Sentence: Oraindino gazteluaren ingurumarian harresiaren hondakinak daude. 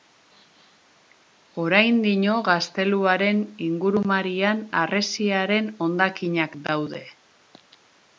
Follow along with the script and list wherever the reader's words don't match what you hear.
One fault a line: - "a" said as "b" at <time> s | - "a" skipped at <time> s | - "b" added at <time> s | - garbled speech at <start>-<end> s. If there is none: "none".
none